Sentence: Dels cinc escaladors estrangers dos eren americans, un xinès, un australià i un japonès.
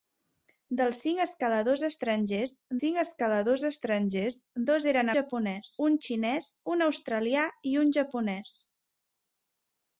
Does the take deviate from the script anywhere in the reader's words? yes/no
yes